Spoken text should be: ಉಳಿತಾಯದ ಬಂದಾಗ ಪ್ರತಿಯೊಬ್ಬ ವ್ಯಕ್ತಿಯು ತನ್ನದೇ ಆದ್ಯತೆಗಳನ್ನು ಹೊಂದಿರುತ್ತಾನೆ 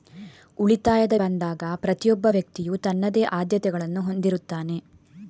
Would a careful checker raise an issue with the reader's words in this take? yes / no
no